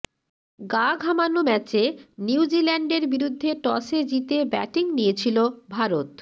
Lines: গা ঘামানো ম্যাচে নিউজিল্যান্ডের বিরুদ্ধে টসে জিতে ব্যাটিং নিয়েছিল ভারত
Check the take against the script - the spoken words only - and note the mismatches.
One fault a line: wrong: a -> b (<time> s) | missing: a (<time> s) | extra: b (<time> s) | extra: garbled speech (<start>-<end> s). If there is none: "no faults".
no faults